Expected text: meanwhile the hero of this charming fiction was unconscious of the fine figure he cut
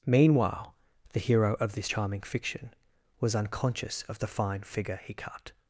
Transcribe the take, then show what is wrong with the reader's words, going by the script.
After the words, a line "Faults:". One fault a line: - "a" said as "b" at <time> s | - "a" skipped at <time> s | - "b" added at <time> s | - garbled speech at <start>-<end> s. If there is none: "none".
meanwhile the hero of this charming fiction was unconscious of the fine figure he cut
Faults:
none